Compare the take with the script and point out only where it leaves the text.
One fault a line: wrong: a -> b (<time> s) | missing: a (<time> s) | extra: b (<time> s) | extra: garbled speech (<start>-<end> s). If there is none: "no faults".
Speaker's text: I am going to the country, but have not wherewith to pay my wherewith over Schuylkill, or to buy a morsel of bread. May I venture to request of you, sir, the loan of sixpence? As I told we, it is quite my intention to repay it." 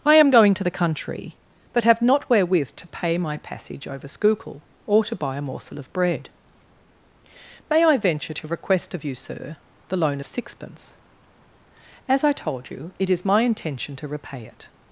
wrong: wherewith -> passage (3.4 s)
wrong: we -> you (12.7 s)
missing: quite (13.3 s)